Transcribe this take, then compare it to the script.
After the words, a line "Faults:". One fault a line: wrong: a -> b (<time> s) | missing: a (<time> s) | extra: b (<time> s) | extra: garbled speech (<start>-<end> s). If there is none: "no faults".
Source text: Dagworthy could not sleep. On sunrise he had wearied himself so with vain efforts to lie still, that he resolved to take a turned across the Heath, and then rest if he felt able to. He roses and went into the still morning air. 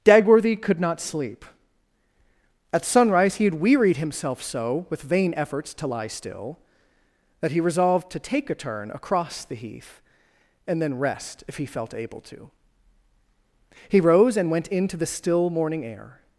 Dagworthy could not sleep. At sunrise he had wearied himself so with vain efforts to lie still, that he resolved to take a turn across the Heath, and then rest if he felt able to. He rose and went into the still morning air.
Faults:
wrong: On -> At (2.7 s)
wrong: turned -> turn (8.5 s)
wrong: roses -> rose (14.0 s)